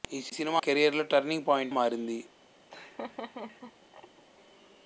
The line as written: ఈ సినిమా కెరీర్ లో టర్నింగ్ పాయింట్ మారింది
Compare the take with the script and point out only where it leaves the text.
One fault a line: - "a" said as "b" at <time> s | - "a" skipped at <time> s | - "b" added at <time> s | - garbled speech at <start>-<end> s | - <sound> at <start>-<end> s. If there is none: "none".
- laugh at 2.7-4.2 s